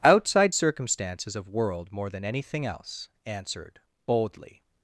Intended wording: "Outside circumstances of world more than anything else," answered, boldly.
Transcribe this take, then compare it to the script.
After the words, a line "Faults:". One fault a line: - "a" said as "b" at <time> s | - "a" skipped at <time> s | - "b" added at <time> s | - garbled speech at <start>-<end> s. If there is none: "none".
"Outside circumstances of world more than anything else," answered, boldly.
Faults:
none